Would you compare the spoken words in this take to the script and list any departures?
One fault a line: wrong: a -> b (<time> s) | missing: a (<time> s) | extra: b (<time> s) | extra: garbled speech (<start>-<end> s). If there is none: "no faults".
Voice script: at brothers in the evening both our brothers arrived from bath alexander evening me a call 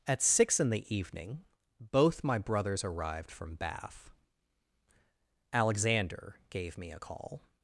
wrong: brothers -> six (0.2 s)
wrong: our -> my (2.2 s)
wrong: evening -> gave (6.5 s)